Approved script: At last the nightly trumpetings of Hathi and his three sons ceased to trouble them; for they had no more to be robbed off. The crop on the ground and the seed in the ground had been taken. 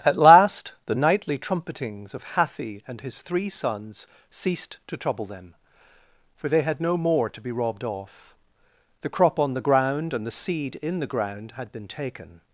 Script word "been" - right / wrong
right